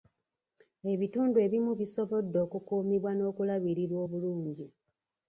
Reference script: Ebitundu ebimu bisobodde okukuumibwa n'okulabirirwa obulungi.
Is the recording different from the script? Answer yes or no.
no